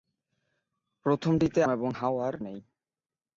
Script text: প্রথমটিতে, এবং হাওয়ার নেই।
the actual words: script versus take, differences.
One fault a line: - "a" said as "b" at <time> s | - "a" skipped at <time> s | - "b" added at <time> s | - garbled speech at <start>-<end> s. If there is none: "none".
none